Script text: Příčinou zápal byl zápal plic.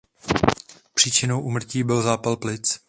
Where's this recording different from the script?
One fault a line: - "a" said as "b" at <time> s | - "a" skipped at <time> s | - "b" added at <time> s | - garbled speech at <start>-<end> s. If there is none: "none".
- "zápal" said as "úmrtí" at 1.4 s